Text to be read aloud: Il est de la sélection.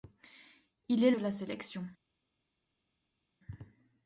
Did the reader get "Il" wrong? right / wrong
right